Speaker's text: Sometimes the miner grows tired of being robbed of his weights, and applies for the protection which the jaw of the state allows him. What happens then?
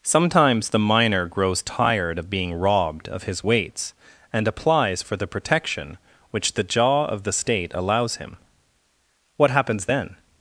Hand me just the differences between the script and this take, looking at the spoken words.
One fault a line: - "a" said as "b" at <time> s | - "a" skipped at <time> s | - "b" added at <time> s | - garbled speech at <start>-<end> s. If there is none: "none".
none